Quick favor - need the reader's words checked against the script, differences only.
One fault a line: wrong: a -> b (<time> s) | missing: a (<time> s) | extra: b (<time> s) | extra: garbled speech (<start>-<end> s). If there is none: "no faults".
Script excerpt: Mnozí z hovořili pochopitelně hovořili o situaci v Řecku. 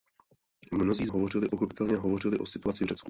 no faults